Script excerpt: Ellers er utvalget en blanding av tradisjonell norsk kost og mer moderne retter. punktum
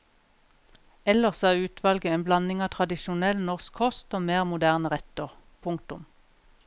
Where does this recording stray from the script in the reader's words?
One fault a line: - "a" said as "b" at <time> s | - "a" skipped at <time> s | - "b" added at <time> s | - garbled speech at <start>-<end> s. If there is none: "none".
none